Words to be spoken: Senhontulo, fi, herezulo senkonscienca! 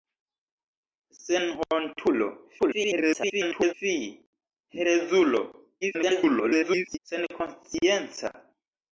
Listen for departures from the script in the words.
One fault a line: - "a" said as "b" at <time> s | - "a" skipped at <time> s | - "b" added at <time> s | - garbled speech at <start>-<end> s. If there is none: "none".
- garbled speech at 2.6-3.7 s
- garbled speech at 5.8-7.0 s